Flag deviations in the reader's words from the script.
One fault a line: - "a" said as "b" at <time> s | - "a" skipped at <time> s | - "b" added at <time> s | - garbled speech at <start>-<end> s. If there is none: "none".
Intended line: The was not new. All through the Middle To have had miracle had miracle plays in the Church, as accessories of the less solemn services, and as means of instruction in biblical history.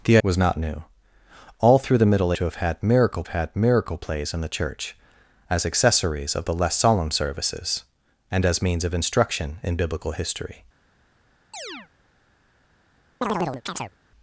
none